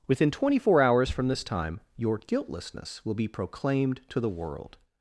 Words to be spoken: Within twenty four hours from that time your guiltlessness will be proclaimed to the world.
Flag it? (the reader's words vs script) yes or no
yes